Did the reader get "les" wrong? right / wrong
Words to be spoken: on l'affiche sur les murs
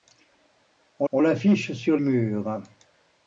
wrong